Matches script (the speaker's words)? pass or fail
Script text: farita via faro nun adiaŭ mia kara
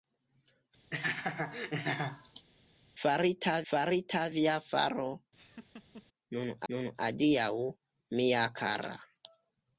fail